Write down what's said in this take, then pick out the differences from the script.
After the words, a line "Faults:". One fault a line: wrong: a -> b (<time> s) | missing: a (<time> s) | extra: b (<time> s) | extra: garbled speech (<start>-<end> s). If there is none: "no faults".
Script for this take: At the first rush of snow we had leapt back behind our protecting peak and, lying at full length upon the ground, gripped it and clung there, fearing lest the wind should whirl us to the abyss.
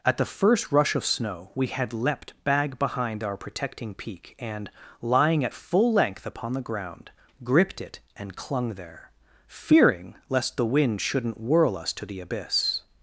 At the first rush of snow we had leapt bag behind our protecting peak and, lying at full length upon the ground, gripped it and clung there, fearing lest the wind shouldn't whirl us to the abyss.
Faults:
wrong: back -> bag (2.4 s)
wrong: should -> shouldn't (11.0 s)